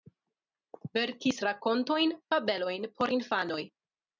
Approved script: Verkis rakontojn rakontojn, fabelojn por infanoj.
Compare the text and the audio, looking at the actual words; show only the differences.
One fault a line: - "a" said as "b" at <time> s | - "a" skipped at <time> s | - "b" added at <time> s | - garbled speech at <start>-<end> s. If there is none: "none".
- "rakontojn" skipped at 2.2 s